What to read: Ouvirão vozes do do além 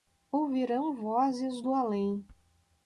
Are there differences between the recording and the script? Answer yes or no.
yes